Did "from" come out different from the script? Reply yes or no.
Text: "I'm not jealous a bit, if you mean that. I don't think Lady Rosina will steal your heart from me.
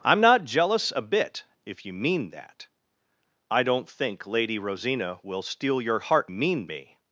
yes